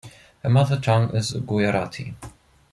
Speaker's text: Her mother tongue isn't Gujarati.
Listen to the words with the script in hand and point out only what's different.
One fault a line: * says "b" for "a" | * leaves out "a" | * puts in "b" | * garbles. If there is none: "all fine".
* says "is" for "isn't"